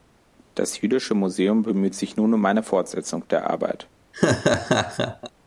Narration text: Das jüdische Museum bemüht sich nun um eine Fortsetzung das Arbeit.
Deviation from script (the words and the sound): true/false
true